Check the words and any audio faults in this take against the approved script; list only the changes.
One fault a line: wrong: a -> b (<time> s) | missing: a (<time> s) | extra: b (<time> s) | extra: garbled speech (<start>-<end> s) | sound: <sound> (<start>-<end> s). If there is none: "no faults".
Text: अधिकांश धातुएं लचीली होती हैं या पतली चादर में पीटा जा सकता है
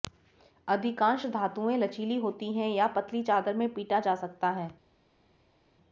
no faults